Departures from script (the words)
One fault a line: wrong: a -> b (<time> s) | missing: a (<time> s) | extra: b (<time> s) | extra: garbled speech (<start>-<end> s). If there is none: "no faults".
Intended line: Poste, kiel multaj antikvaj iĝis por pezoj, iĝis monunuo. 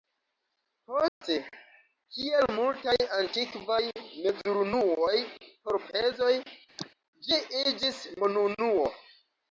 wrong: iĝis -> mezurunuoj (4.0 s)
extra: ĝi (7.3 s)